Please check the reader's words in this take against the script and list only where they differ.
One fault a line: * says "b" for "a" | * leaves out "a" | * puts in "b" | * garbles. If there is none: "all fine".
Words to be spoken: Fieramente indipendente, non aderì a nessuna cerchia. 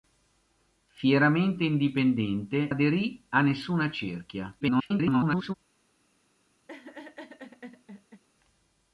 * leaves out "non"
* garbles